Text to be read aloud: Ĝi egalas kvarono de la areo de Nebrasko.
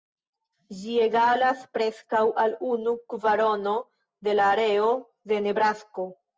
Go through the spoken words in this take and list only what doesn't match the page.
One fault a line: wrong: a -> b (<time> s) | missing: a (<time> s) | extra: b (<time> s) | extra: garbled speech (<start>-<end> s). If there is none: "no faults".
extra: preskaŭ al unu (1.8 s)